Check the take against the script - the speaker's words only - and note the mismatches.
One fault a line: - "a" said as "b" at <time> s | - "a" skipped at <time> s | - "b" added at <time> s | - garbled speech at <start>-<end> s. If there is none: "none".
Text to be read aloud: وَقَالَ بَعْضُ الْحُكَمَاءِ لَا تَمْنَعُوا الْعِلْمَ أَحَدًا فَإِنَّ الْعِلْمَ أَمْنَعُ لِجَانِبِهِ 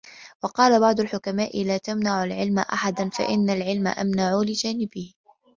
none